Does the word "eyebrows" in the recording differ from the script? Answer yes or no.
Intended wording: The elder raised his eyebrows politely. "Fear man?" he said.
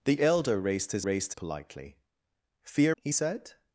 yes